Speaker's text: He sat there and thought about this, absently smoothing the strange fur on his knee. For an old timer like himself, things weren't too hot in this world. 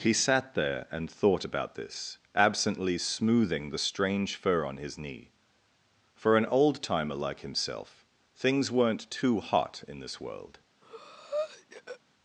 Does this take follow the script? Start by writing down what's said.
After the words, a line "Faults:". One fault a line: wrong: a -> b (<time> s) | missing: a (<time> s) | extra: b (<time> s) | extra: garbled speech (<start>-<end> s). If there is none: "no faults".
He sat there and thought about this, absently smoothing the strange fur on his knee. For an old timer like himself, things weren't too hot in this world.
Faults:
no faults